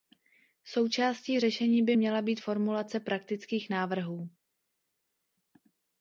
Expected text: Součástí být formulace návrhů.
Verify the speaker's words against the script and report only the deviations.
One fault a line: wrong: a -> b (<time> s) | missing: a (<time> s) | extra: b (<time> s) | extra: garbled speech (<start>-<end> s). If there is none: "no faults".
extra: řešení by měla (1.4 s)
extra: praktických (3.0 s)